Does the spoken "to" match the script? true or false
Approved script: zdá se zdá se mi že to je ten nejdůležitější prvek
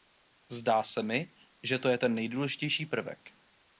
true